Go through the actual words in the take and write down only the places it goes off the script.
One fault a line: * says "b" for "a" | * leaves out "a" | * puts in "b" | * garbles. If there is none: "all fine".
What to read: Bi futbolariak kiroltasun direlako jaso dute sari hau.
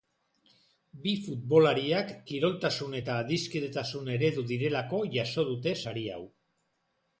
* puts in "eta adiskidetasun eredu"